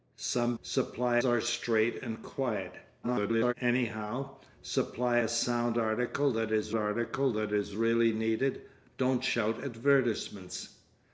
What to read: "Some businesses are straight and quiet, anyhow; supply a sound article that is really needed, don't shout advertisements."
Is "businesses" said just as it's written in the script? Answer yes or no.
no